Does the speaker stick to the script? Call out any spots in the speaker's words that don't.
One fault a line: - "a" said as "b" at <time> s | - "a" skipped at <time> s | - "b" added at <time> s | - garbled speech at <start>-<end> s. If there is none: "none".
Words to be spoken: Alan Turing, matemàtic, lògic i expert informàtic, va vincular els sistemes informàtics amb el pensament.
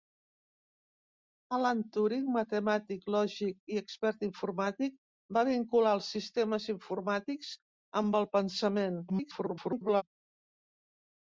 - garbled speech at 9.1-10.0 s